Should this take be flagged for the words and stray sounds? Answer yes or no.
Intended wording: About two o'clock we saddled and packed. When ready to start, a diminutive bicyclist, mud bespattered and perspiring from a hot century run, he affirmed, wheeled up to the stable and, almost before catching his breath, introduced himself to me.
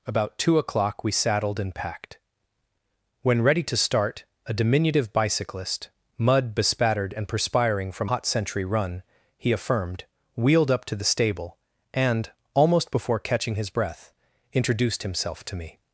yes